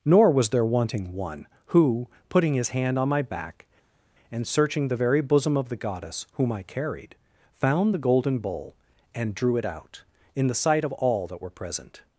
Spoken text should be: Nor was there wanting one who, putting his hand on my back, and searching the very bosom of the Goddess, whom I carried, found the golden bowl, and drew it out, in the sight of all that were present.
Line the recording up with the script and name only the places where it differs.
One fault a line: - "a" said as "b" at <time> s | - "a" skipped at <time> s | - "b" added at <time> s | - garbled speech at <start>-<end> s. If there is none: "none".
none